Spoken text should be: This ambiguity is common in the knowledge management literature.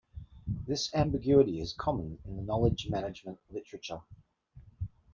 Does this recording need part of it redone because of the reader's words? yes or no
no